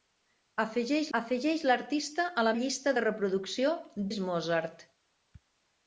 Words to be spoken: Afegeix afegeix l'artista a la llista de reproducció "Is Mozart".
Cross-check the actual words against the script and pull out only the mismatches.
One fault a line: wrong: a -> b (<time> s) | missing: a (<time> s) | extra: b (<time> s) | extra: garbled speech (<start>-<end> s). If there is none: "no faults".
no faults